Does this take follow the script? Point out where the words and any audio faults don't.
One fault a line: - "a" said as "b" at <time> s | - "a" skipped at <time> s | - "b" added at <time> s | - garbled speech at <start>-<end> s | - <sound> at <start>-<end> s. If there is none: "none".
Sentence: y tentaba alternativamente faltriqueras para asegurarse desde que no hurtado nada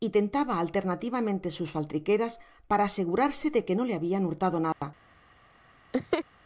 - "sus" added at 1.5 s
- "desde" said as "de" at 3.5 s
- "le habian" added at 3.8 s
- dropout at 4.7-4.8 s
- laugh at 5.9-6.2 s